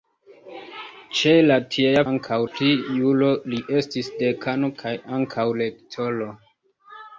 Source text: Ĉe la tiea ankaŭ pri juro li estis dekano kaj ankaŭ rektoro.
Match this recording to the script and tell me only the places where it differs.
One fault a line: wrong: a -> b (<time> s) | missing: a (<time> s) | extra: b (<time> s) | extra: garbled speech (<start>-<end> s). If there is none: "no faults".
no faults